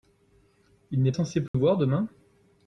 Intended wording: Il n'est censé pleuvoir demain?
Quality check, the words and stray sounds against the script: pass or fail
fail